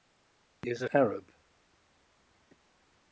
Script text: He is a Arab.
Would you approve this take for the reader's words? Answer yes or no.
yes